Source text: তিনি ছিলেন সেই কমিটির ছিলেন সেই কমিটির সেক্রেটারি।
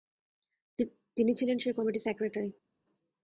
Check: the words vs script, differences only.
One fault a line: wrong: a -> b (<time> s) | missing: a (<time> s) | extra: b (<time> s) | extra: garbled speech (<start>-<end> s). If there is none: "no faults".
missing: ছিলেন সেই কমিটির (2.0 s)